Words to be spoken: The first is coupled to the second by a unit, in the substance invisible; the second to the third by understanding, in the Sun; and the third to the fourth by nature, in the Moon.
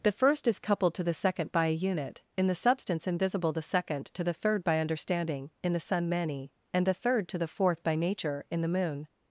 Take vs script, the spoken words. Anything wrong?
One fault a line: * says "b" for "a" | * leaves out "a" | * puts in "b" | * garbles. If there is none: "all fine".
* puts in "many"